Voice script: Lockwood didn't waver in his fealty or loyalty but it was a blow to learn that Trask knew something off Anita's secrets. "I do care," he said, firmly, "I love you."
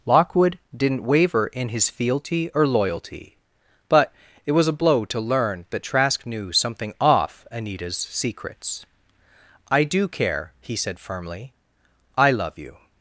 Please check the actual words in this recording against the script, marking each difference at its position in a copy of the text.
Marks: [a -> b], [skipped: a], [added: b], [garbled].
Lockwood didn't waver in his fealty or loyalty but it was a blow to learn that Trask knew something off Anita's secrets. "I do care," he said, firmly, "I love you."